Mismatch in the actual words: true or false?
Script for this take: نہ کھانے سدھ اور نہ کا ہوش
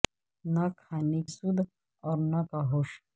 false